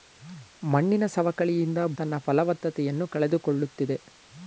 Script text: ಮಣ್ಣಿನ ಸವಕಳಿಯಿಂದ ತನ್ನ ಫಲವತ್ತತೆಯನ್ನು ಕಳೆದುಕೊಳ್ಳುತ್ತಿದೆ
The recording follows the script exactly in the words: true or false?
true